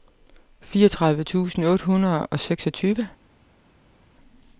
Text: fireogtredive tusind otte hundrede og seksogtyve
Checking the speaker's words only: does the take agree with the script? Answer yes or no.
yes